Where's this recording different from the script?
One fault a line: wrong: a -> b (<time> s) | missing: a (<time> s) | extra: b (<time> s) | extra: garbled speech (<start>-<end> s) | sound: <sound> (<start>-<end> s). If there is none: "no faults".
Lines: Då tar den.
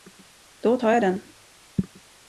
extra: jag (0.9 s)